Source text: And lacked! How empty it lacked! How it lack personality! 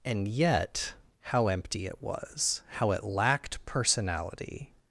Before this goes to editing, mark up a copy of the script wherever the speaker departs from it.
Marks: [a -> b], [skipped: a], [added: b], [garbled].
And [lacked! -> yet] How empty it [lacked! -> was] How it [lack -> lacked] personality!